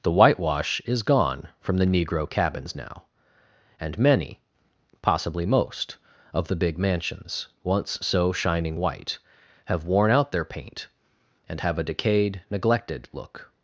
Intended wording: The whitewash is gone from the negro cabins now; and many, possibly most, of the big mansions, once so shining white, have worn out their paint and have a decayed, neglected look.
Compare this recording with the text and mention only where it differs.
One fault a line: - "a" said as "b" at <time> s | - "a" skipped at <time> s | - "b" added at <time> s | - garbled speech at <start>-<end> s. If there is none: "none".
none